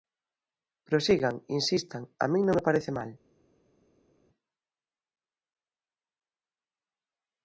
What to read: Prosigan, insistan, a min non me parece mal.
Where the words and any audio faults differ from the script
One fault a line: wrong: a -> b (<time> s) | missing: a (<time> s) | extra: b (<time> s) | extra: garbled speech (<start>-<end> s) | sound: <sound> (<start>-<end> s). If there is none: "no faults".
no faults